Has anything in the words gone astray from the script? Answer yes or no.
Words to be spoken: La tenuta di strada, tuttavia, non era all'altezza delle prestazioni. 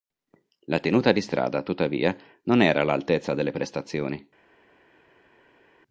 no